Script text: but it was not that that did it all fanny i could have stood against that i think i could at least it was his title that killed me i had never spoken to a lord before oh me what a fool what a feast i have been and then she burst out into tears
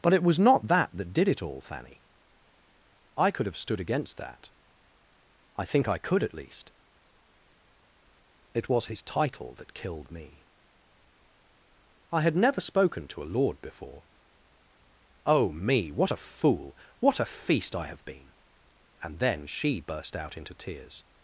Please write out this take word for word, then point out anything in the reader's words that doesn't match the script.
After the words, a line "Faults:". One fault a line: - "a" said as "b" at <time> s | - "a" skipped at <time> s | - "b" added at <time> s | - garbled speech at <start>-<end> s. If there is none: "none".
but it was not that that did it all fanny i could have stood against that i think i could at least it was his title that killed me i had never spoken to a lord before oh me what a fool what a feast i have been and then she burst out into tears
Faults:
none